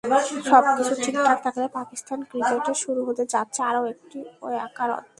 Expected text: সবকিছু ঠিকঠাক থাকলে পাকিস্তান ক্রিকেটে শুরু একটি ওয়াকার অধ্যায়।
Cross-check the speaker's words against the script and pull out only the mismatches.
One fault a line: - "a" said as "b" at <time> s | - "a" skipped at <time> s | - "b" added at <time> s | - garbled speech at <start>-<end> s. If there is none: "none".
- "হতে যাচ্ছে আরও" added at 3.1 s